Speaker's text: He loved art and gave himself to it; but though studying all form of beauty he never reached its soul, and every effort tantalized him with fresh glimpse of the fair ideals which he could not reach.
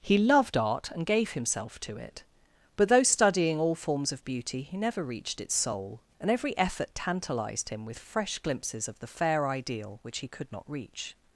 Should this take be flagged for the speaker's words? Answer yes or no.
yes